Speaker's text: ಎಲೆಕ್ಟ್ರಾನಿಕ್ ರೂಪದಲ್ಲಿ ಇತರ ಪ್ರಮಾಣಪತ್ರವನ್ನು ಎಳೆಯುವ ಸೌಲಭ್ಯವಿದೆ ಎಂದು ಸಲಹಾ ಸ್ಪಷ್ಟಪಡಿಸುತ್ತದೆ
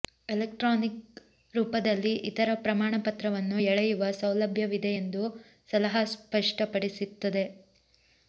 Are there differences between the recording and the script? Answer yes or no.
no